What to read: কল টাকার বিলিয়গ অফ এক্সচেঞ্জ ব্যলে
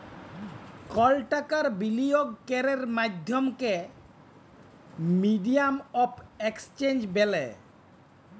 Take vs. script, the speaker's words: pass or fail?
fail